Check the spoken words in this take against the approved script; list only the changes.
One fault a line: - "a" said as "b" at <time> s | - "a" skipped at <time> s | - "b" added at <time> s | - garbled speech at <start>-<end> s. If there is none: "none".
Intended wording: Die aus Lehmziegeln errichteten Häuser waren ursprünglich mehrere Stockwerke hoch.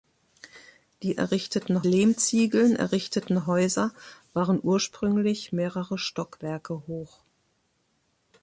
- "aus" said as "errichteten" at 1.1 s